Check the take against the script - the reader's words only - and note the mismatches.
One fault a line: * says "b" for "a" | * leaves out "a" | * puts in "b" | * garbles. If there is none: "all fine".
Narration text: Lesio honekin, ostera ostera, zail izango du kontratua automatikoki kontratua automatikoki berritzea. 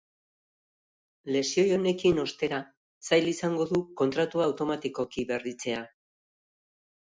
* leaves out "ostera"
* leaves out "kontratua automatikoki"